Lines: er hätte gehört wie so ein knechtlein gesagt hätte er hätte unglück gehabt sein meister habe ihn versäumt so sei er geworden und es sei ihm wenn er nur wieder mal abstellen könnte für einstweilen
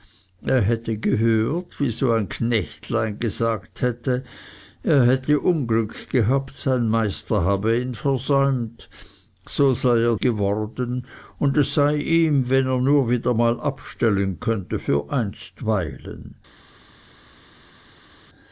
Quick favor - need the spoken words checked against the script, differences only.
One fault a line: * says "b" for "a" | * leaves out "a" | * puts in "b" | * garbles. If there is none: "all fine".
all fine